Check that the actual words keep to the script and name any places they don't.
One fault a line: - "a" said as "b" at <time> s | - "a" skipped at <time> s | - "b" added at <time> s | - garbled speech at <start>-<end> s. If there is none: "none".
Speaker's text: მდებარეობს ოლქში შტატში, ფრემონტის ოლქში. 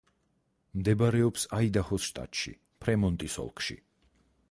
- "ოლქში" said as "აიდაჰოს" at 1.6 s